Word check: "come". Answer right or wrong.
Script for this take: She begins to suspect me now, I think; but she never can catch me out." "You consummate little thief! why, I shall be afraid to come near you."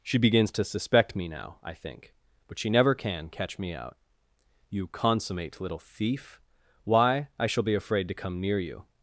right